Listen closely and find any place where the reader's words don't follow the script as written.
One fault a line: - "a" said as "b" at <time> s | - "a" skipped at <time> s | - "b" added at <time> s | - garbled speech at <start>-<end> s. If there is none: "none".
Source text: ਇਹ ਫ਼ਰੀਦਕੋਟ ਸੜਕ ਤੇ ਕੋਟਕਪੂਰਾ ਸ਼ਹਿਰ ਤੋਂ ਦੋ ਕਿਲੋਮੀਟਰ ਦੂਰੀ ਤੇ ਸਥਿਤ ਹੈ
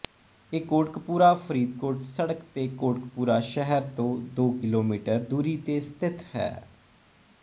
- "ਕੋਟਕਪੂਰਾ" added at 0.7 s